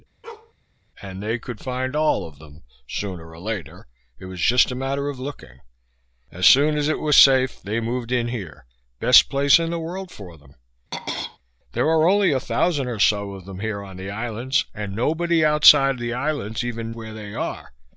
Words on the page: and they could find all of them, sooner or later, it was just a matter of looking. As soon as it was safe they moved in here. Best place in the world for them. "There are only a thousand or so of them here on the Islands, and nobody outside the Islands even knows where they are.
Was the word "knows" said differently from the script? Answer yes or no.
yes